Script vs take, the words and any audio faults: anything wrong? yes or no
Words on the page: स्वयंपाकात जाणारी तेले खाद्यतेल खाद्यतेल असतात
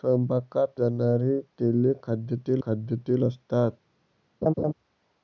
yes